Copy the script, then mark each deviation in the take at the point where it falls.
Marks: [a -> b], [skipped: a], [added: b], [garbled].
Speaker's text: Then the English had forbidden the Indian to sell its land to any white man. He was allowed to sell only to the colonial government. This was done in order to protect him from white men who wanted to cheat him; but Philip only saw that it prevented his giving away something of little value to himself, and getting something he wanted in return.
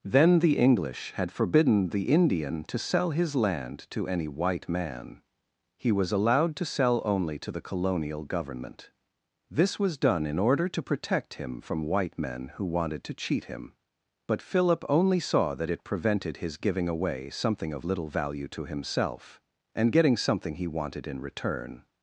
Then the English had forbidden the Indian to sell [its -> his] land to any white man. He was allowed to sell only to the colonial government. This was done in order to protect him from white men who wanted to cheat him; but Philip only saw that it prevented his giving away something of little value to himself, and getting something he wanted in return.